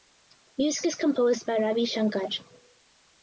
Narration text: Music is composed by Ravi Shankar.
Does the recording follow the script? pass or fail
pass